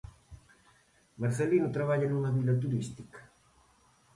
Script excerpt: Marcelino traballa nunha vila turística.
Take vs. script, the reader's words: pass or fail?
pass